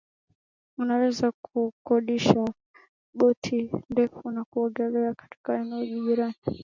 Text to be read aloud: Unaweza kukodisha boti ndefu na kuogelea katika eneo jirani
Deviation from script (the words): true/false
false